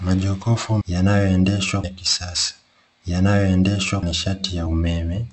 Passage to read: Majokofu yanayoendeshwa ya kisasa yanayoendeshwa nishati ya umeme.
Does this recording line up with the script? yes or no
yes